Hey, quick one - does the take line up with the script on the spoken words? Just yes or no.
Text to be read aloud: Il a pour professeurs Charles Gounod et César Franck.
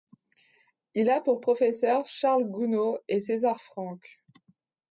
yes